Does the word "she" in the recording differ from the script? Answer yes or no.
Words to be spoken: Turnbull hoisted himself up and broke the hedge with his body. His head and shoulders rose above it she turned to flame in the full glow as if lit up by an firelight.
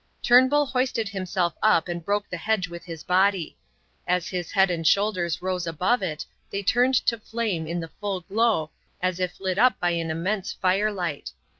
yes